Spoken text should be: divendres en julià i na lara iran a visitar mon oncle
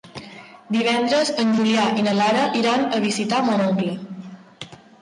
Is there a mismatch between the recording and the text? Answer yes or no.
no